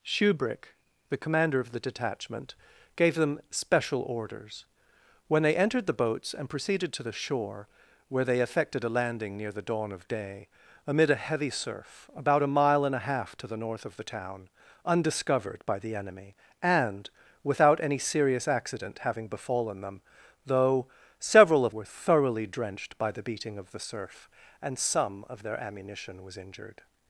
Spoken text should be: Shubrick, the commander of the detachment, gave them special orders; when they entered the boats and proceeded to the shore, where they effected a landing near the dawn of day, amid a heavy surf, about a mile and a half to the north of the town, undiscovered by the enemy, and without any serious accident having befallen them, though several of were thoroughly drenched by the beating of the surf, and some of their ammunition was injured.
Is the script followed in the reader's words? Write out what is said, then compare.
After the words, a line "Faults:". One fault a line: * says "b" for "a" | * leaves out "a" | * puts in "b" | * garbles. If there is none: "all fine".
Shubrick, the commander of the detachment, gave them special orders; when they entered the boats and proceeded to the shore, where they effected a landing near the dawn of day, amid a heavy surf, about a mile and a half to the north of the town, undiscovered by the enemy, and without any serious accident having befallen them, though several of were thoroughly drenched by the beating of the surf, and some of their ammunition was injured.
Faults:
all fine